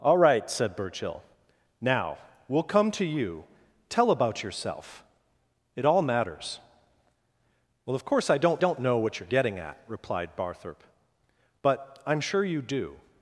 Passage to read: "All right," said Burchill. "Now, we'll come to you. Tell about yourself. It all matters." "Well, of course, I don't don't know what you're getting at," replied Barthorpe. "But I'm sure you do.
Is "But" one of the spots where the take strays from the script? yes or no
no